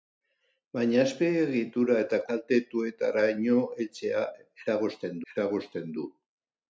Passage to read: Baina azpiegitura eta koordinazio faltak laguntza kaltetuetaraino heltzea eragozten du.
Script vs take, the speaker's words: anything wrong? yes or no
yes